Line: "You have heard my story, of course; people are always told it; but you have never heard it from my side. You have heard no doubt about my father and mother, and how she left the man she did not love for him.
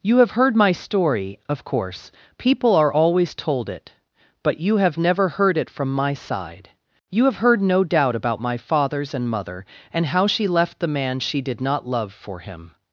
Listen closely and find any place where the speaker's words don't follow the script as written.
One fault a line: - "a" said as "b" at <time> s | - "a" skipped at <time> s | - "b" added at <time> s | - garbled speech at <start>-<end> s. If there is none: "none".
- "father" said as "fathers" at 8.6 s